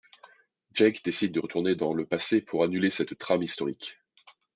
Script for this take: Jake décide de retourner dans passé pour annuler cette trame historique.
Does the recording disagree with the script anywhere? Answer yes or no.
yes